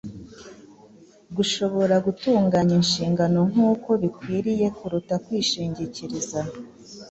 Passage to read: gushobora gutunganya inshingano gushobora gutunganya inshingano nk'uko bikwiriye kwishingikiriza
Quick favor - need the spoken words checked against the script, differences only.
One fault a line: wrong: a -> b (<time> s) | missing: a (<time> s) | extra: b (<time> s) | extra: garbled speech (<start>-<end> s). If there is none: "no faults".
missing: gushobora gutunganya inshingano (3.4 s)
extra: kuruta (4.8 s)